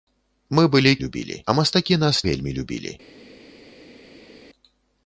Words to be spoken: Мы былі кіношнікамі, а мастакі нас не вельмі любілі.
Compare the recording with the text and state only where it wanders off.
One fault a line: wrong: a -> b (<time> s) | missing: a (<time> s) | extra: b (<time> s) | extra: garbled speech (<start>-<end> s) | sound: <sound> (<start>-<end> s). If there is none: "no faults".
wrong: кіношнікамі -> любілі (1.0 s)
missing: не (2.2 s)